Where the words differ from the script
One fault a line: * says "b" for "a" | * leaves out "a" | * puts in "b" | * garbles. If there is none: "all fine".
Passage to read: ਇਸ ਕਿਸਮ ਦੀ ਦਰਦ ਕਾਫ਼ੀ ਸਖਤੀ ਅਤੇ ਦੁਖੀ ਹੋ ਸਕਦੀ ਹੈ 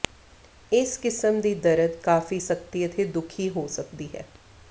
all fine